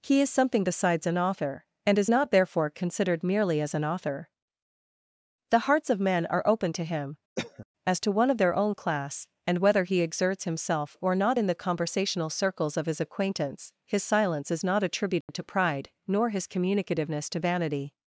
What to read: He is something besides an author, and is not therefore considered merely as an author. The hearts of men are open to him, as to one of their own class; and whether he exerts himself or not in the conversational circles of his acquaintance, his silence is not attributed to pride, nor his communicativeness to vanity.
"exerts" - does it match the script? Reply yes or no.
yes